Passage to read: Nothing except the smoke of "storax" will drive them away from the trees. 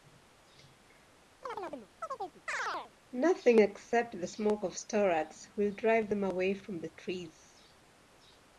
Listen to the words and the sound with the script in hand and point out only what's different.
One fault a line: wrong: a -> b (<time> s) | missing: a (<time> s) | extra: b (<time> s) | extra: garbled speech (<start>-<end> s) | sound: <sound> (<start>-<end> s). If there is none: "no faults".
sound: chirp (1.4-2.9 s)